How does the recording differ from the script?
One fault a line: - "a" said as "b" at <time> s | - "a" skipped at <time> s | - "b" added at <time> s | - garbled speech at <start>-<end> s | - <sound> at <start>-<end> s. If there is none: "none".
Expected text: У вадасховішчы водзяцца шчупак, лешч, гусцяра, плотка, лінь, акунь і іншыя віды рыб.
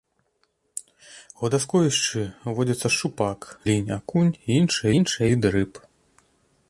- "лешч гусцяра плотка" skipped at 3.4 s
- "іншыя" added at 5.0 s